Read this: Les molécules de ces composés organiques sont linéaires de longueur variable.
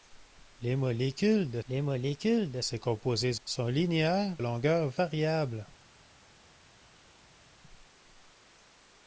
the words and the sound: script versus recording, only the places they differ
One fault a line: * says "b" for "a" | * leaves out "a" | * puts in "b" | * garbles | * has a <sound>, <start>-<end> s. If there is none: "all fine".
* puts in "les molécules de"
* leaves out "organiques"
* leaves out "de"